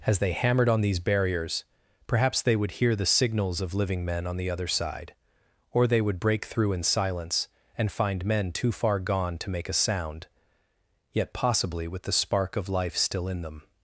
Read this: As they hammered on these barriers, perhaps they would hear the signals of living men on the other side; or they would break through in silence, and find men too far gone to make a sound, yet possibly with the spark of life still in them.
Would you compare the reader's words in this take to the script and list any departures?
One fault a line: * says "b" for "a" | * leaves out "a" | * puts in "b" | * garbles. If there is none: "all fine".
all fine